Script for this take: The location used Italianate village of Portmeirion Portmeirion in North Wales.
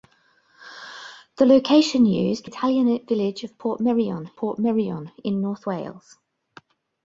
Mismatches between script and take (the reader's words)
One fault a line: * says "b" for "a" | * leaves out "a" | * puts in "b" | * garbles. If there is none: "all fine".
all fine